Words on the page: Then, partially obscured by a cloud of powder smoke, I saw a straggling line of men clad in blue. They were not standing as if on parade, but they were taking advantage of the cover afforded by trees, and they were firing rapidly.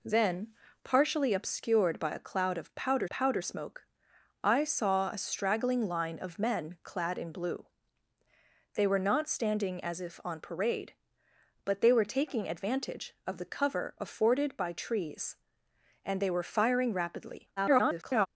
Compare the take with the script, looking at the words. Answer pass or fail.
fail